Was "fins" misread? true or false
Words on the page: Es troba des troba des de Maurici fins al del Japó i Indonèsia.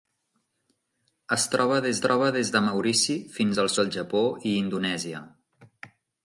false